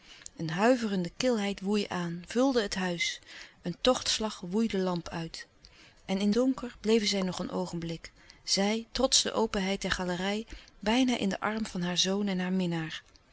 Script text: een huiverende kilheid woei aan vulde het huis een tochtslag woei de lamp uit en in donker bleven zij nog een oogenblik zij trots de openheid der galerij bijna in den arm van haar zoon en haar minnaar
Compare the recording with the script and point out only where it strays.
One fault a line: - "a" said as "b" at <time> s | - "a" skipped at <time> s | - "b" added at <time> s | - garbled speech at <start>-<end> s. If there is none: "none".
none